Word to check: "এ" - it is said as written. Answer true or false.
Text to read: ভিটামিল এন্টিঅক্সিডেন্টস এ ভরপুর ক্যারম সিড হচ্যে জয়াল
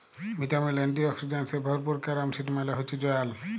true